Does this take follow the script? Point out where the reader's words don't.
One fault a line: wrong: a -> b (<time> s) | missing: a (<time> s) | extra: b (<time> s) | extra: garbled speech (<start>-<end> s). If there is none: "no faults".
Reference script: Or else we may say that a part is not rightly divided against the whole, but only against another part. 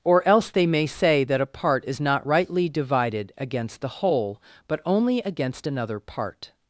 wrong: we -> they (0.5 s)